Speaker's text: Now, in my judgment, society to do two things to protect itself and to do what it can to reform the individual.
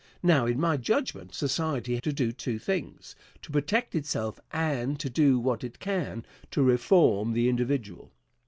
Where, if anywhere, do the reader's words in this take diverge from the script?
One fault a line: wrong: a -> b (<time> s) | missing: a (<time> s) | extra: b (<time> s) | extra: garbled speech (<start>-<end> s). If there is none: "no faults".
no faults